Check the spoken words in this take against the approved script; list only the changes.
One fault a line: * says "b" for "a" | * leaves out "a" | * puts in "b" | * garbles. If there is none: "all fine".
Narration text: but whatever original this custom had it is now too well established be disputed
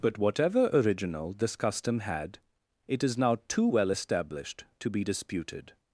* puts in "to"